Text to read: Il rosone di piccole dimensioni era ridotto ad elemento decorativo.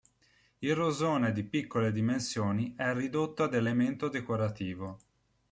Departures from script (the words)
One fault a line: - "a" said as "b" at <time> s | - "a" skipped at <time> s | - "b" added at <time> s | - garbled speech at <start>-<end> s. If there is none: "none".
- "era" said as "è" at 2.8 s